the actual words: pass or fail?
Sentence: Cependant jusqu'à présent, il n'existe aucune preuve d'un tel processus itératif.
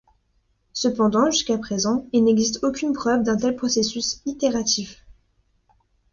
pass